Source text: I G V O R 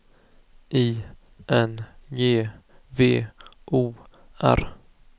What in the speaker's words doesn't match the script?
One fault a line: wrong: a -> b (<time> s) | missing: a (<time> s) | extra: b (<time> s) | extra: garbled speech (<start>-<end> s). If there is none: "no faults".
extra: N (1.5 s)